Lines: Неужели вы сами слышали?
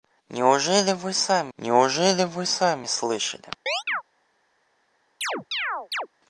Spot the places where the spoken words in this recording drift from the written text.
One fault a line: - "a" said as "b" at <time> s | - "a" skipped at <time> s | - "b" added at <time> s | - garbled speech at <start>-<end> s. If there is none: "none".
- "неужели вы сами" added at 1.6 s